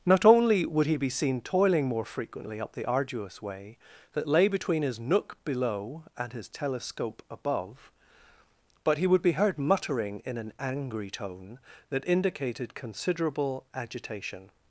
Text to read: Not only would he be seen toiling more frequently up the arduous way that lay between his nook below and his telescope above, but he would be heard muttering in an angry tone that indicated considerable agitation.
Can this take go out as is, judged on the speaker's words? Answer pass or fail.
pass